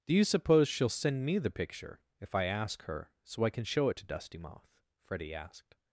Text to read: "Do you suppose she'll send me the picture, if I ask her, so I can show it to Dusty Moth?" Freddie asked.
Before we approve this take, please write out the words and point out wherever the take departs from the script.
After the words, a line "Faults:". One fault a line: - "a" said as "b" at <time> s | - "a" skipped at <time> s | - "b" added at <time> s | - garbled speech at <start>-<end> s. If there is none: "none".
"Do you suppose she'll send me the picture, if I ask her, so I can show it to Dusty Moth?" Freddie asked.
Faults:
none